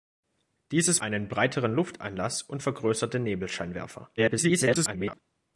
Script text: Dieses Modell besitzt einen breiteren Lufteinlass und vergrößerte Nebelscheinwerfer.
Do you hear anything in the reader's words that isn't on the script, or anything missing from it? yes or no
yes